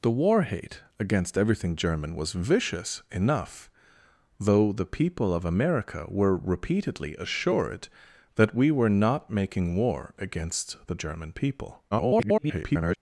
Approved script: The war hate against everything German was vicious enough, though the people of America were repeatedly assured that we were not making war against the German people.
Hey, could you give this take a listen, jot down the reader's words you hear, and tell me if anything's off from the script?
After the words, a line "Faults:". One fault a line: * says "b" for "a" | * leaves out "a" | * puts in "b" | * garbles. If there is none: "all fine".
The war hate against everything German was vicious enough, though the people of America were repeatedly assured that we were not making war against the German people. [garbled]
Faults:
* garbles